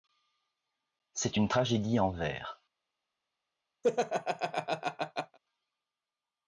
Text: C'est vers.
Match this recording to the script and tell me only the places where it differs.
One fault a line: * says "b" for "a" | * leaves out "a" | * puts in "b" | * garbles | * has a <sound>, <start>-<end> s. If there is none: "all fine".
* puts in "une tragédie en"
* has a laugh, 3.8-5.4 s